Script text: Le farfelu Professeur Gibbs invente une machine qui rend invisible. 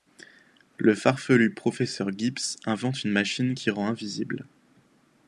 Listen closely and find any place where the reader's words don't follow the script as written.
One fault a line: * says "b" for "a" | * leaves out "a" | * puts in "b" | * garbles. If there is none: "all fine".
all fine